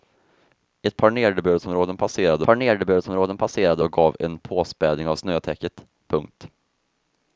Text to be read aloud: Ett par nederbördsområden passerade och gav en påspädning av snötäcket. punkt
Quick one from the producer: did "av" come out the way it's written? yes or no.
yes